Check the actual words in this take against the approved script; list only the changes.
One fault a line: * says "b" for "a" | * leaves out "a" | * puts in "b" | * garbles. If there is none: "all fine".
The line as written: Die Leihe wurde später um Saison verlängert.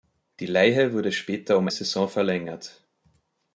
all fine